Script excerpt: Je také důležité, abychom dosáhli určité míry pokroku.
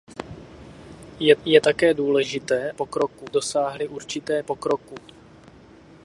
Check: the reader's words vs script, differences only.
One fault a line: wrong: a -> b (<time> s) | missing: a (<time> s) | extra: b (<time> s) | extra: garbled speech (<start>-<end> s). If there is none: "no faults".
extra: je (1.4 s)
wrong: abychom -> pokroku (2.7 s)
missing: míry (4.4 s)